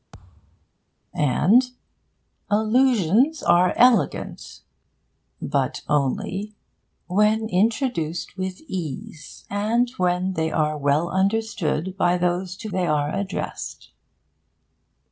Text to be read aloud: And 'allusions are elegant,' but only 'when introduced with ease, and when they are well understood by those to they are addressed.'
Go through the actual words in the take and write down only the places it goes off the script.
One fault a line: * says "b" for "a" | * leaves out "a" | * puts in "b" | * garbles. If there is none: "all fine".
all fine